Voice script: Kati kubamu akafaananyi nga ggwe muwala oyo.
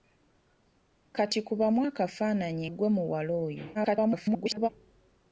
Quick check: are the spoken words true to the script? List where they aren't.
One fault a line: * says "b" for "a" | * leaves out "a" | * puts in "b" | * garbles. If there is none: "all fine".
* leaves out "nga"
* garbles